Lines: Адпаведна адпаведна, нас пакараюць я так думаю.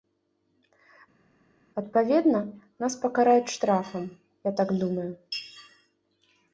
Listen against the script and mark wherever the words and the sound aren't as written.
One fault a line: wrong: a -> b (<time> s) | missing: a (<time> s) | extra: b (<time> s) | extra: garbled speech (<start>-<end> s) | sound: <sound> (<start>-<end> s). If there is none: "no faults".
missing: адпаведна (2.4 s)
extra: штрафам (3.5 s)